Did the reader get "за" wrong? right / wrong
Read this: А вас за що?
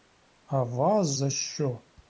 right